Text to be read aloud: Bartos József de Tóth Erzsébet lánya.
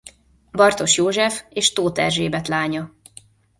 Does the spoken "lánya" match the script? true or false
true